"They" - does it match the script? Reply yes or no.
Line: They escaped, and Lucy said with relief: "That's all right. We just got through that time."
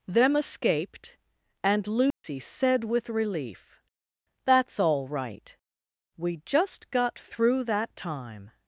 no